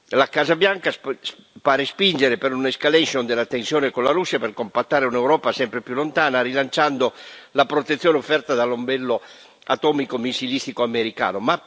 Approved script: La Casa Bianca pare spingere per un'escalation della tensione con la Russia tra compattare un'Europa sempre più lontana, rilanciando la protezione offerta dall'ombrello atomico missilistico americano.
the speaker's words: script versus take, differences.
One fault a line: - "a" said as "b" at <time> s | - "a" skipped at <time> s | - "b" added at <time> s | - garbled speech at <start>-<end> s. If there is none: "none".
- "tra" said as "per" at 4.4 s